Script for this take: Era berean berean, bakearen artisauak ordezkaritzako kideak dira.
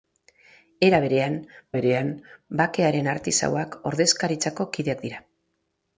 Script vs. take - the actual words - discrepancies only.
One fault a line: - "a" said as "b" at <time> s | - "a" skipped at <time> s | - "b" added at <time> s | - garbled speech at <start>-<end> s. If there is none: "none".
none